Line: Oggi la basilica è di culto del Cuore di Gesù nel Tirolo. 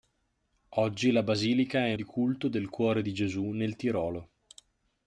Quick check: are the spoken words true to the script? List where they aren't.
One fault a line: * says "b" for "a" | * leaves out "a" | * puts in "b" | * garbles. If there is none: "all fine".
all fine